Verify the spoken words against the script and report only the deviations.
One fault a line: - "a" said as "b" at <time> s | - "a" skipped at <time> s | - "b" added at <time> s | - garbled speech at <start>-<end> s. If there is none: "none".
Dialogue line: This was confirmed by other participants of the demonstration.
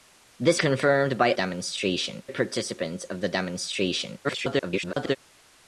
- "was" skipped at 0.6 s
- "other" said as "demonstration" at 1.3 s
- garbled speech at 4.2-5.2 s